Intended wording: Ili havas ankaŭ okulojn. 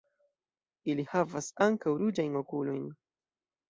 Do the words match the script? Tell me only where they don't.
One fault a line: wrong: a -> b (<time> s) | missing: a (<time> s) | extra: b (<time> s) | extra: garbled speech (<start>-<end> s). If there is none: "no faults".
extra: ruĝajn (2.0 s)